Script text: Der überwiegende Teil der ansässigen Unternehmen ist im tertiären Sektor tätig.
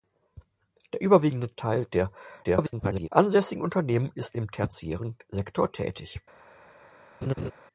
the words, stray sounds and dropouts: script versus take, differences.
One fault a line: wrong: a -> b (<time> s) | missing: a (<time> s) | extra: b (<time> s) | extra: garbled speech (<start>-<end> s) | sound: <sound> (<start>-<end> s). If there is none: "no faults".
extra: garbled speech (2.4-3.1 s)
sound: laugh (7.2-7.5 s)